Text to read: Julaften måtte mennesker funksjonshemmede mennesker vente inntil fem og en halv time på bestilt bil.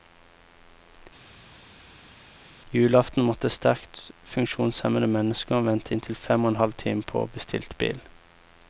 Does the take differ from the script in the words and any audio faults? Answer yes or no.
yes